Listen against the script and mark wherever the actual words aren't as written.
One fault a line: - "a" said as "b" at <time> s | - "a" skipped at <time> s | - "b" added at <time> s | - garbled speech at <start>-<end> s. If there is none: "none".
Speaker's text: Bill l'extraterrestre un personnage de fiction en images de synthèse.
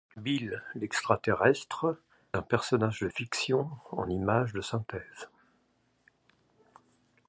none